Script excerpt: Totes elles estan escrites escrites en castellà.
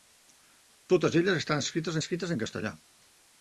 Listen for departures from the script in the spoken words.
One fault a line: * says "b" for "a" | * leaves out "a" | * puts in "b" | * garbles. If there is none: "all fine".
all fine